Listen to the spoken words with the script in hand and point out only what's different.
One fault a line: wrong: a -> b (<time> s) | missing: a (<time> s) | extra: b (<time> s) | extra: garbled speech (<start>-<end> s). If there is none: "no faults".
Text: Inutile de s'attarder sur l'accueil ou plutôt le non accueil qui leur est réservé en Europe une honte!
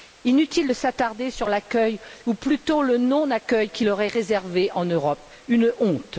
no faults